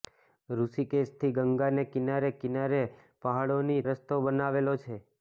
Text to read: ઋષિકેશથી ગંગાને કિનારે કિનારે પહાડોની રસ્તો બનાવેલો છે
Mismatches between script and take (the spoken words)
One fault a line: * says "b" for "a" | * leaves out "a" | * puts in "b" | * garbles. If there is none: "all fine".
all fine